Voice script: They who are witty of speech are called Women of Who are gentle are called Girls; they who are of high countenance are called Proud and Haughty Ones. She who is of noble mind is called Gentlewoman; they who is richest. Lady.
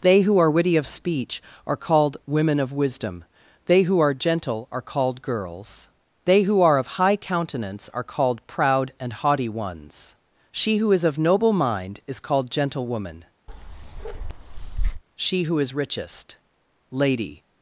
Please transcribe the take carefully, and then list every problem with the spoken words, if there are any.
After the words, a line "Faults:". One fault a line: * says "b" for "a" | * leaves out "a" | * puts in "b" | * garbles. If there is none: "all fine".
They who are witty of speech are called Women of Wisdom. They who are gentle are called Girls; they who are of high countenance are called Proud and Haughty Ones. She who is of noble mind is called Gentlewoman; she who is richest. Lady.
Faults:
* puts in "Wisdom They"
* says "she" for "they"